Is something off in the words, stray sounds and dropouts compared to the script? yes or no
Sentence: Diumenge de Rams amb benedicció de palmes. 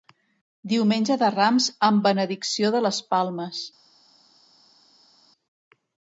yes